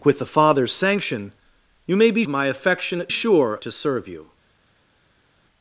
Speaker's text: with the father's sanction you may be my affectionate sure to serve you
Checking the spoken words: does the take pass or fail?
pass